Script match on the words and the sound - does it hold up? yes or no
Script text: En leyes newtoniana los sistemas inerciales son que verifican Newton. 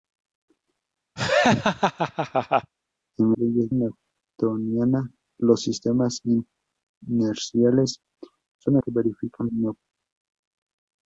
no